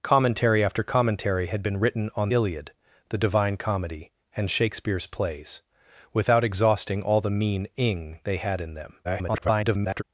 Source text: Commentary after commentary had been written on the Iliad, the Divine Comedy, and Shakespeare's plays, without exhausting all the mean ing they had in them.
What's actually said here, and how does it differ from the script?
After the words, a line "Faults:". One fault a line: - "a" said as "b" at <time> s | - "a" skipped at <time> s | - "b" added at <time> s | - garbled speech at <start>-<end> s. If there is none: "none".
Commentary after commentary had been written on Iliad, the Divine Comedy, and Shakespeare's plays, without exhausting all the mean ing they had in them. [garbled]
Faults:
- "the" skipped at 2.3 s
- garbled speech at 9.0-10.0 s